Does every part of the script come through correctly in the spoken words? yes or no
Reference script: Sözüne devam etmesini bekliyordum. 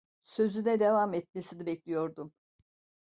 yes